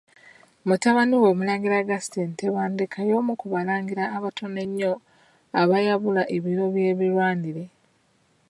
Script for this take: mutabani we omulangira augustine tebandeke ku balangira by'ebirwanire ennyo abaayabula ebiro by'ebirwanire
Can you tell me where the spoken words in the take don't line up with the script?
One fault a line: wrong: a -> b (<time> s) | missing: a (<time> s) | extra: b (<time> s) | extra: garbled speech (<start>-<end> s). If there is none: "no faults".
extra: y'omu (3.1 s)
wrong: by'ebirwanire -> abatono (4.2 s)